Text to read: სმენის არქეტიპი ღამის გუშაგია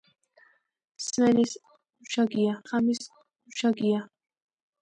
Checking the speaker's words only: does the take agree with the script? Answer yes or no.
no